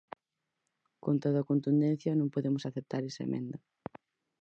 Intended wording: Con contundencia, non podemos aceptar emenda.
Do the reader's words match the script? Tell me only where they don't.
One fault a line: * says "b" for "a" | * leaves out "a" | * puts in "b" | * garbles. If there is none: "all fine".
* puts in "toda"
* puts in "esa"